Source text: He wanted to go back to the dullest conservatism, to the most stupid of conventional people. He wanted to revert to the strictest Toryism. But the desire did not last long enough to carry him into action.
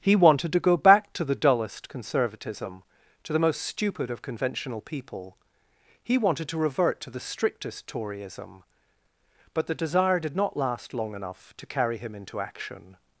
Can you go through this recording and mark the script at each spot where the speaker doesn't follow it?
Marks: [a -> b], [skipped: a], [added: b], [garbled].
He wanted to go back to the dullest conservatism, to the most stupid of conventional people. He wanted to revert to the strictest Toryism. But the desire did not last long enough to carry him into action.